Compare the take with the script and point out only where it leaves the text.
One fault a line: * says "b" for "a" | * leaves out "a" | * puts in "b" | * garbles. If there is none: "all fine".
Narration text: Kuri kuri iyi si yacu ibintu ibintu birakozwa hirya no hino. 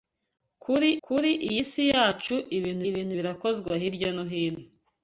all fine